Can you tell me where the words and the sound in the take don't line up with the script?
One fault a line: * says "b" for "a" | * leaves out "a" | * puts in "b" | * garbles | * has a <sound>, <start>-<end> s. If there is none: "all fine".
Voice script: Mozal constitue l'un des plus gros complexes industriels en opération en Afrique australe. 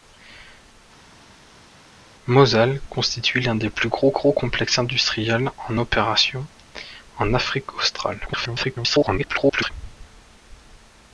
* puts in "gros"
* garbles